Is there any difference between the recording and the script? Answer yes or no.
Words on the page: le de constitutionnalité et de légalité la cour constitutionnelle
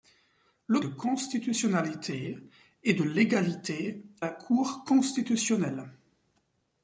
no